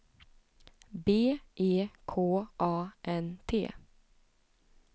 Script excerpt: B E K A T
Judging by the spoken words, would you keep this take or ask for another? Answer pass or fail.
fail